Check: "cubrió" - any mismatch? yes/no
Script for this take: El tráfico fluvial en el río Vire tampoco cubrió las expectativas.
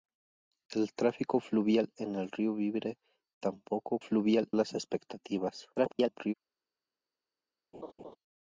yes